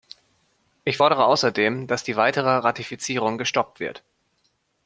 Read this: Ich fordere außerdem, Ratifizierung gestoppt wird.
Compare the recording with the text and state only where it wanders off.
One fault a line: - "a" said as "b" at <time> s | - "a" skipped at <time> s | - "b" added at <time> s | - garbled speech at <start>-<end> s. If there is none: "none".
- "dass die weitere" added at 1.9 s